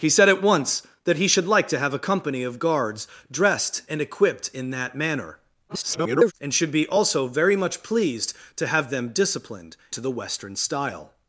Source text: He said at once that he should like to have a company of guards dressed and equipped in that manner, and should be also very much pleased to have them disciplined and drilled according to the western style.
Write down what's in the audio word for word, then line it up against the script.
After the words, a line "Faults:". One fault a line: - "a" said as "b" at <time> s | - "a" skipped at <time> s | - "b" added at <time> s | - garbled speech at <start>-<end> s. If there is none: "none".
He said at once that he should like to have a company of guards dressed and equipped in that manner, [garbled] and should be also very much pleased to have them disciplined to the western style.
Faults:
- garbled speech at 5.7-6.3 s
- "and drilled according" skipped at 9.8 s